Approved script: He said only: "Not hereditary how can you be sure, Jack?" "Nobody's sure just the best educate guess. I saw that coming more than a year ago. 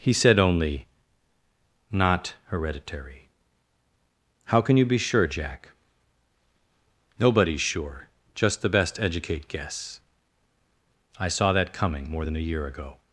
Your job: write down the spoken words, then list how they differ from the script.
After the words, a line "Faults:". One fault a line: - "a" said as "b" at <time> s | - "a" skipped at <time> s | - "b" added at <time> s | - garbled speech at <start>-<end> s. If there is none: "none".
He said only: "Not hereditary how can you be sure, Jack?" "Nobody's sure just the best educate guess. I saw that coming more than a year ago.
Faults:
none